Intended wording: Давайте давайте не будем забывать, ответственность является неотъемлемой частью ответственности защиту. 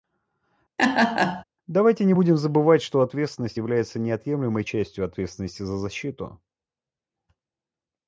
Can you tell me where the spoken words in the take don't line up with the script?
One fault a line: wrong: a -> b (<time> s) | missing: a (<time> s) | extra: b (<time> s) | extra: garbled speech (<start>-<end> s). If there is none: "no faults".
missing: давайте (2.0 s)
extra: что (2.8 s)
extra: за (5.6 s)